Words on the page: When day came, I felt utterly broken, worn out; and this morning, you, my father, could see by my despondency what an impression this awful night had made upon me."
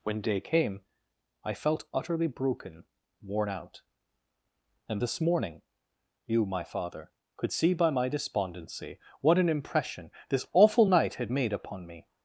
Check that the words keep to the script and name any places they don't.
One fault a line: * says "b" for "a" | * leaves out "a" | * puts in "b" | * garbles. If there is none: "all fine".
all fine